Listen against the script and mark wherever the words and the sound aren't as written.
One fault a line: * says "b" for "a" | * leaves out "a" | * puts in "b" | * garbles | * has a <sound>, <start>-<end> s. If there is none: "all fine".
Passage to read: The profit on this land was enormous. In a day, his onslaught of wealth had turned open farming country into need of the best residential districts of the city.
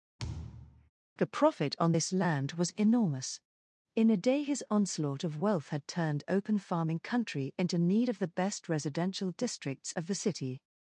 * has a thud, 0.2-0.9 s